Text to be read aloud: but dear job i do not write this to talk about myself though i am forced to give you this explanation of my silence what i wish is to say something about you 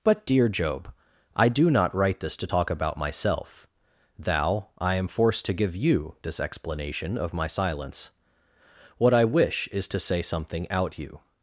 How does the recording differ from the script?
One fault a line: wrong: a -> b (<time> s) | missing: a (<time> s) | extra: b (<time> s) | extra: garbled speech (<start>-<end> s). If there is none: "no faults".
wrong: though -> thou (4.2 s)
wrong: about -> out (10.7 s)